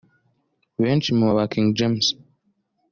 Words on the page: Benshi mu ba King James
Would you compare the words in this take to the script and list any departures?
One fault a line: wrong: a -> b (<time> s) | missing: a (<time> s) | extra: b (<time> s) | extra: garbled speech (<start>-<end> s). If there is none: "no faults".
no faults